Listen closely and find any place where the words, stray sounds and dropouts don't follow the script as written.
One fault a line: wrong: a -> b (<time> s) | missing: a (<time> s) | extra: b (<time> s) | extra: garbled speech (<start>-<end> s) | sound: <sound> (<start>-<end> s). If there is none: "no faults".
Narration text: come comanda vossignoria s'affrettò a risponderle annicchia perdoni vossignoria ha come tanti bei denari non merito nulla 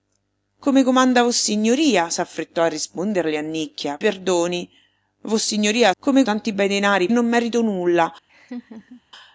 sound: laugh (8.3-9.0 s)